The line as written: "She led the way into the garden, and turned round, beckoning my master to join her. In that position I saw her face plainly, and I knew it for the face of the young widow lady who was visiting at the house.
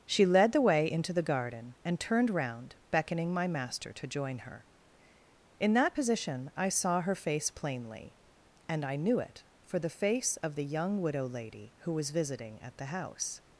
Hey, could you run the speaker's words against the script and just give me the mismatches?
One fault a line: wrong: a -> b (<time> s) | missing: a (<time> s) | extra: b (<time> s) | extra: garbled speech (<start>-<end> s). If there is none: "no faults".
no faults